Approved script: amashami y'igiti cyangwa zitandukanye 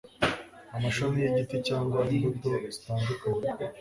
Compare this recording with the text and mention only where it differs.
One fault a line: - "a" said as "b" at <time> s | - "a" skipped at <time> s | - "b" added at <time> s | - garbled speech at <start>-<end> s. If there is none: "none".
- "imbuto" added at 2.1 s